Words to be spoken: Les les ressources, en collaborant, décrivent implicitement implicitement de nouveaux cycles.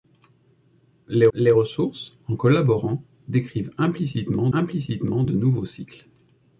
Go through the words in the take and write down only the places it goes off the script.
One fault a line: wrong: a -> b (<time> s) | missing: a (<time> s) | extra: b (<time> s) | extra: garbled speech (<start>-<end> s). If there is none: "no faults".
no faults